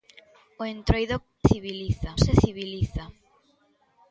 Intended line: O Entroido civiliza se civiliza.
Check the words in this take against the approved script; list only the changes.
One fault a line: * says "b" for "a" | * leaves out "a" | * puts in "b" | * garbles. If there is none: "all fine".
all fine